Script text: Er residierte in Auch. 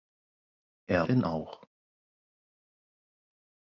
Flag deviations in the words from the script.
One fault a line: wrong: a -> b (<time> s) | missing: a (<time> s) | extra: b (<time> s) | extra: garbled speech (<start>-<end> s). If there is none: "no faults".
missing: residierte (1.1 s)